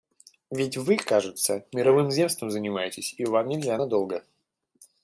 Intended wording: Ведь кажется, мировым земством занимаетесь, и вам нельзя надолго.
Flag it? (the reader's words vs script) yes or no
yes